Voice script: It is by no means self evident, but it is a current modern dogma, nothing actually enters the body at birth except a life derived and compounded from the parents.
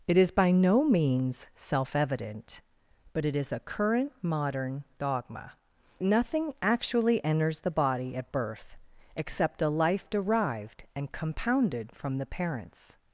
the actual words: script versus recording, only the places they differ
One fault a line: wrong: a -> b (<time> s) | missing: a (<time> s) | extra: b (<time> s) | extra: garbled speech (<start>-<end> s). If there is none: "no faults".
no faults